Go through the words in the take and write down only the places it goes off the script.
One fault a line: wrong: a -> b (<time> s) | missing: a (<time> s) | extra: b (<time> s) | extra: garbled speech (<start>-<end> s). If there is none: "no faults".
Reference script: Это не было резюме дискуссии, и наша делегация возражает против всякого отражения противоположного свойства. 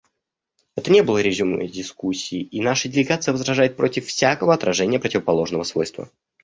no faults